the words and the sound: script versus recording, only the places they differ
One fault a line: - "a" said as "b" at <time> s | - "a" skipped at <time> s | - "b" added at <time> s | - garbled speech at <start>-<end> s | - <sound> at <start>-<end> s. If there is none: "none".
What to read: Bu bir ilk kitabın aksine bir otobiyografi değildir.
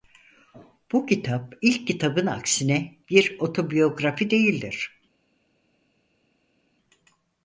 - "bir" said as "kitap" at 1.1 s